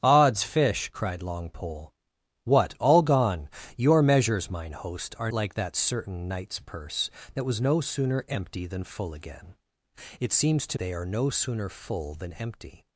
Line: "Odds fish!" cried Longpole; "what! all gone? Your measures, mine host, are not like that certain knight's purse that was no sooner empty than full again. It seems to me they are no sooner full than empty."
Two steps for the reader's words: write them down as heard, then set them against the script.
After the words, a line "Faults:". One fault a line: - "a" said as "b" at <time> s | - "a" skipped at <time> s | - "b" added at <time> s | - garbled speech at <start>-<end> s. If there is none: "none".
"Odds fish!" cried Longpole; "what! all gone? Your measures, mine host, are like that certain knight's purse that was no sooner empty than full again. It seems to they are no sooner full than empty."
Faults:
- "not" skipped at 5.3 s
- "me" skipped at 10.8 s